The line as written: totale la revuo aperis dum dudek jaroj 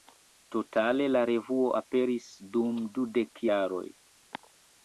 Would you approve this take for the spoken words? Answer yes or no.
yes